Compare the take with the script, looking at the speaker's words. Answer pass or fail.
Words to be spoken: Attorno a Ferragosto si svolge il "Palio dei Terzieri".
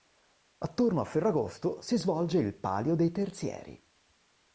pass